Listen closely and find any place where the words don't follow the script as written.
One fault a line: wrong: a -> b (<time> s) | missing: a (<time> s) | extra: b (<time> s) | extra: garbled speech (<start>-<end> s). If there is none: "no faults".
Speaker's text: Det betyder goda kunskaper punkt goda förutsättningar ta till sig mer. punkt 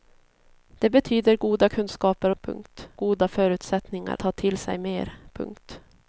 no faults